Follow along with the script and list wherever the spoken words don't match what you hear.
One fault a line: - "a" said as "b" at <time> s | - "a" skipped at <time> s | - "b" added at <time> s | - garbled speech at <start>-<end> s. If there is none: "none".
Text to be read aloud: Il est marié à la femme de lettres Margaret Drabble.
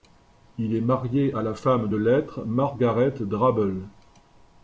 none